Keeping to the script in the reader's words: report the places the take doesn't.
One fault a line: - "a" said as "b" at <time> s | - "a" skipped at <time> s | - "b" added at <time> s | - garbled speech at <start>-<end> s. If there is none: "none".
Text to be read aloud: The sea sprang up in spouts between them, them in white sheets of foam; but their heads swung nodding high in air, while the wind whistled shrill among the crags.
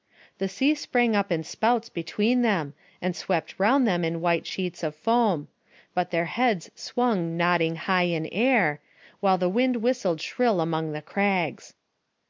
- "and swept round" added at 3.0 s